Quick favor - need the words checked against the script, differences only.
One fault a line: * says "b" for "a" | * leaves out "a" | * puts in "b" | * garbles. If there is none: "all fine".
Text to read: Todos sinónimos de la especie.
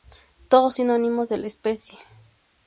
all fine